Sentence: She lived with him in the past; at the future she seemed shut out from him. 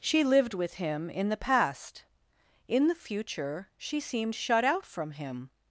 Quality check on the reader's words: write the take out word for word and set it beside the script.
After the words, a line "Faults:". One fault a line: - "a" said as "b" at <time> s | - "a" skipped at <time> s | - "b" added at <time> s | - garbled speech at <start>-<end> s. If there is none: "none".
She lived with him in the past; in the future she seemed shut out from him.
Faults:
- "at" said as "in" at 2.7 s